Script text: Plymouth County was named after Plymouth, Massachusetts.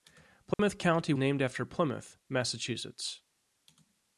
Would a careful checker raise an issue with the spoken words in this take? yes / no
yes